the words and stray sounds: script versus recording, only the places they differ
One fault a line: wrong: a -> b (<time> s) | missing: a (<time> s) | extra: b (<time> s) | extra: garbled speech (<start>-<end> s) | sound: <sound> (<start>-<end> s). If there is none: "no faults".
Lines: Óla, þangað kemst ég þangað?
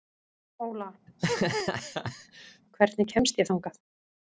sound: laugh (1.1-2.6 s)
wrong: þangað -> hvernig (2.8 s)